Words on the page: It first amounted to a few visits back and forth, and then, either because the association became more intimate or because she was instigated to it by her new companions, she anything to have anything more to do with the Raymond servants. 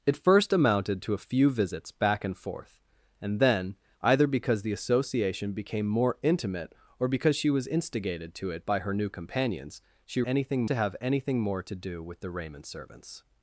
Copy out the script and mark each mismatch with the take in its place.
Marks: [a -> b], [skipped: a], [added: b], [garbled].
It first amounted to a few visits back and forth, and then, either because the association became more intimate or because she was instigated to it by her new companions, she anything to have anything more to do with the Raymond servants.